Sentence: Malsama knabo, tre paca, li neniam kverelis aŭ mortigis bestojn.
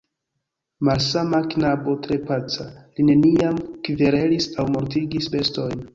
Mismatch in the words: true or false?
false